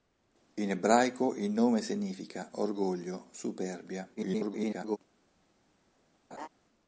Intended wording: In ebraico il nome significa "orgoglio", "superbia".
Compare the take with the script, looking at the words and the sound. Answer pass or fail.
fail